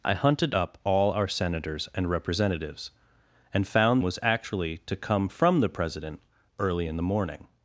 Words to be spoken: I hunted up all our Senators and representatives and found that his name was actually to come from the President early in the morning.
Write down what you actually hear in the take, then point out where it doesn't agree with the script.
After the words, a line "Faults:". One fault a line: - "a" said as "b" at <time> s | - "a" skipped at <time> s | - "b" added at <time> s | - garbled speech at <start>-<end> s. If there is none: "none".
I hunted up all our Senators and representatives and found was actually to come from the President early in the morning.
Faults:
- "that his name" skipped at 4.0 s